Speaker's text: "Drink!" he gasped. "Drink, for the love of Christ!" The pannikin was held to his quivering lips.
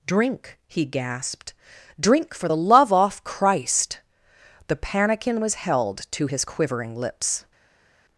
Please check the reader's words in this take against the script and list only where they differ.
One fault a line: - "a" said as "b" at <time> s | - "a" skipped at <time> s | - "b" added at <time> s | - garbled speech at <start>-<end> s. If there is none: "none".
- "of" said as "off" at 2.9 s